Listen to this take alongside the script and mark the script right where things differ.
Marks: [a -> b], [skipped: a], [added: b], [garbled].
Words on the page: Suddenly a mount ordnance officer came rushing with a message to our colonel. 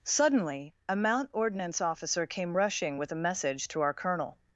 Suddenly a mount ordnance officer came rushing with a message to our colonel.